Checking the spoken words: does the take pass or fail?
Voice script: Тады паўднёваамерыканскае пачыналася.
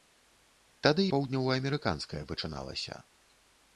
pass